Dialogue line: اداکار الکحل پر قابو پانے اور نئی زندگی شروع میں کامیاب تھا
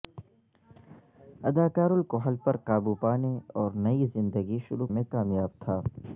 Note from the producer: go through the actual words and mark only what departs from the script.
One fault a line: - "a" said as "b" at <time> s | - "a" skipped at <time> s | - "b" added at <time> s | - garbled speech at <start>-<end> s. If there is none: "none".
none